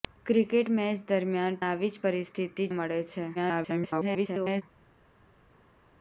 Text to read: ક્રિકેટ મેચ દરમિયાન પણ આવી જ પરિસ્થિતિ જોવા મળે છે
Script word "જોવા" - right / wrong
wrong